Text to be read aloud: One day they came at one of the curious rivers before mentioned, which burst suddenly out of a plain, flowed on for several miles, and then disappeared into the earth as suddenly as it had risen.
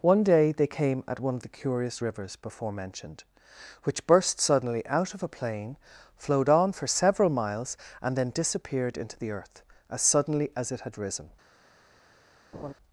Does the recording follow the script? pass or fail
pass